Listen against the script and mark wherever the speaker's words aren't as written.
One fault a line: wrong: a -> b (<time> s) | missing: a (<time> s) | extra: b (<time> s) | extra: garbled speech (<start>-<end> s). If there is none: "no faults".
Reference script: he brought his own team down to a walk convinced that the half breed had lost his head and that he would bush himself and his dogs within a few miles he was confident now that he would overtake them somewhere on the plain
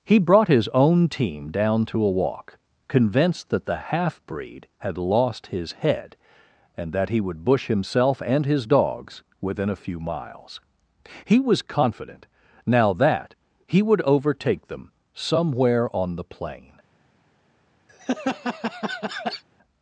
no faults